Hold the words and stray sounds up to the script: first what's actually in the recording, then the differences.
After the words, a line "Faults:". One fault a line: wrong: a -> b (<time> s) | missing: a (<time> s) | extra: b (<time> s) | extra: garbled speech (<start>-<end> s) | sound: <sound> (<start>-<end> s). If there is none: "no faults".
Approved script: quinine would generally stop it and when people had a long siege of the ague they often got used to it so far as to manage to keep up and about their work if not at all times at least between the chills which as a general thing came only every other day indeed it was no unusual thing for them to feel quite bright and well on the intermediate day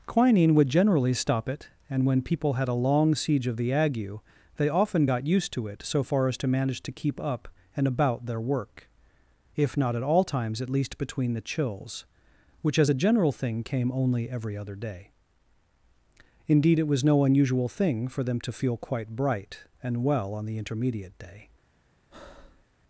quinine would generally stop it and when people had a long siege of the ague they often got used to it so far as to manage to keep up and about their work if not at all times at least between the chills which as a general thing came only every other day indeed it was no unusual thing for them to feel quite bright and well on the intermediate day
Faults:
sound: breath (22.1-22.7 s)